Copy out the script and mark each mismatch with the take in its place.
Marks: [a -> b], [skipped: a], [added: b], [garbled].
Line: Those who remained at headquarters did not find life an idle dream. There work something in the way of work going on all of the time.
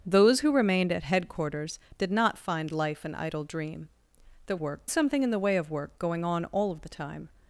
Those who remained at headquarters did not find life an idle dream. There work something in the way of work going on all of the time.